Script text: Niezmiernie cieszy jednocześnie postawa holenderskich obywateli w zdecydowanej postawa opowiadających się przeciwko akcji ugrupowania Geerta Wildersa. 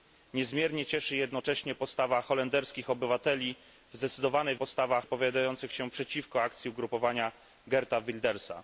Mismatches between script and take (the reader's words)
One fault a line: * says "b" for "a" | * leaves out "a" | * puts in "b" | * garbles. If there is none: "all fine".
all fine